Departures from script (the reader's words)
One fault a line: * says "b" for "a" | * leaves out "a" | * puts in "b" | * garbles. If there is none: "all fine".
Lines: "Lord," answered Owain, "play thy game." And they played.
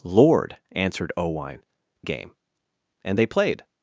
* leaves out "play thy"